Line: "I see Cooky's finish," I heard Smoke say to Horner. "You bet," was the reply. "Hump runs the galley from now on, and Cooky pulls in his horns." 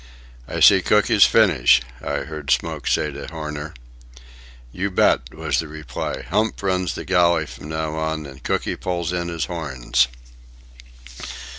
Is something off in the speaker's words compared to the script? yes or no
no